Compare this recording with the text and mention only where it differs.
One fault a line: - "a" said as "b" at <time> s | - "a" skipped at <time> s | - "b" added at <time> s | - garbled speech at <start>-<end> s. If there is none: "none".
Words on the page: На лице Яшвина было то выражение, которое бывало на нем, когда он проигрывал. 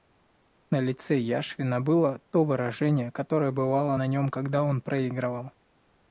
none